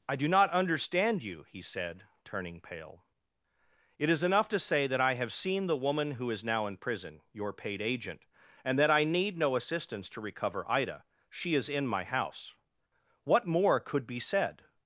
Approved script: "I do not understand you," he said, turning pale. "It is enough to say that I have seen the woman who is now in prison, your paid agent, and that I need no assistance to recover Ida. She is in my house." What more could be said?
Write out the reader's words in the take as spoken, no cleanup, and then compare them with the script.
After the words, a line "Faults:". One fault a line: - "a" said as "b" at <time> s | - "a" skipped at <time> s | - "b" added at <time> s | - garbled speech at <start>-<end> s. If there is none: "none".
"I do not understand you," he said, turning pale. "It is enough to say that I have seen the woman who is now in prison, your paid agent, and that I need no assistance to recover Ida. She is in my house." What more could be said?
Faults:
none